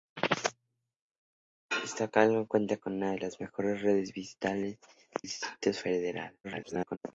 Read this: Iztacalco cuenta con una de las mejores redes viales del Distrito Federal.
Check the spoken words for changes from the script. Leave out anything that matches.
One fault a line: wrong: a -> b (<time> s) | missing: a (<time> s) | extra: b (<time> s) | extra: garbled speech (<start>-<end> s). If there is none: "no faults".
missing: del (4.8 s)
extra: garbled speech (6.4-7.0 s)